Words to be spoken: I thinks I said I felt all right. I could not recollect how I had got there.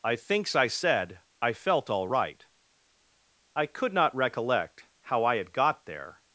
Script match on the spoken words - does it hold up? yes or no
yes